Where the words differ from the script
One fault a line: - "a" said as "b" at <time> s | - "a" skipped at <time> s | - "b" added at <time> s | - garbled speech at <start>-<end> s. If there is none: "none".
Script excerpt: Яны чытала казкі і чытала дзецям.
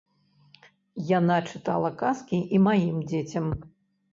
- "Яны" said as "Яна" at 1.2 s
- "чытала" said as "маім" at 2.7 s